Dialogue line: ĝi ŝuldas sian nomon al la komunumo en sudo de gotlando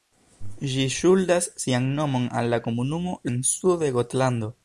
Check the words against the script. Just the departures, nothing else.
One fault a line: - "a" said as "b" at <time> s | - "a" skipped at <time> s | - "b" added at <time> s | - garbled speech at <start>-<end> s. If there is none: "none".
none